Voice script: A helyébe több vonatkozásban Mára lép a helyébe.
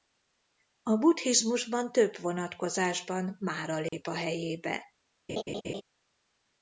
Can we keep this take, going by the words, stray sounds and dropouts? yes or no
no